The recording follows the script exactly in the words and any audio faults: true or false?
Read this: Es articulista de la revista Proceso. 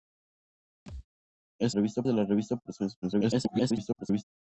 false